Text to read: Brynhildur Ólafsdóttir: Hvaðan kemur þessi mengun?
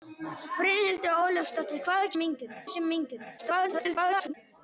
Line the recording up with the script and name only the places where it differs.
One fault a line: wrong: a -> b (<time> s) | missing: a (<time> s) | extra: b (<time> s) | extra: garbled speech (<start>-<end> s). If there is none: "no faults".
wrong: kemur -> mengun (2.2 s)
extra: garbled speech (3.4-4.3 s)